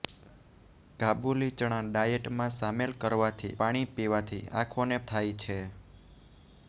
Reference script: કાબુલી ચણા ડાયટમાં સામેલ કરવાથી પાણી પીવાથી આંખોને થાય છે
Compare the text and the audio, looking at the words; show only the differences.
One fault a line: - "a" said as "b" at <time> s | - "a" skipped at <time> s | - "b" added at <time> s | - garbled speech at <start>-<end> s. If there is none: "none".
none